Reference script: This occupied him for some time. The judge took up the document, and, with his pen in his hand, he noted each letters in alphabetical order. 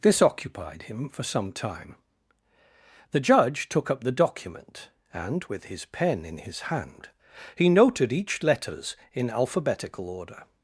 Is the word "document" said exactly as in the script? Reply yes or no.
yes